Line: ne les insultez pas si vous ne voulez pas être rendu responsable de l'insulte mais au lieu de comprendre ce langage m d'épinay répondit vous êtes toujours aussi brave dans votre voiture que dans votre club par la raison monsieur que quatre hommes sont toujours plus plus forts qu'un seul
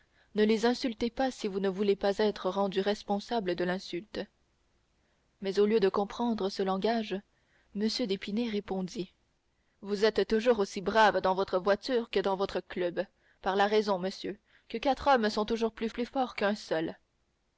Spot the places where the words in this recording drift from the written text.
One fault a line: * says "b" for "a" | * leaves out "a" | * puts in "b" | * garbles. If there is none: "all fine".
all fine